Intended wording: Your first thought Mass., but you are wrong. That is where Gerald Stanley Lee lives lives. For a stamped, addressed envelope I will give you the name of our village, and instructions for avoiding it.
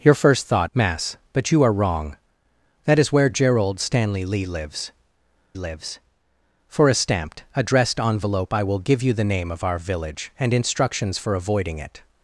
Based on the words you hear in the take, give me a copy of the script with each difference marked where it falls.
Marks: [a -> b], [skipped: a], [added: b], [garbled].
Your first thought Mass., but you are wrong. That is where Gerald Stanley Lee lives lives. For a stamped, addressed envelope I will give you the name of our village, and instructions for avoiding it.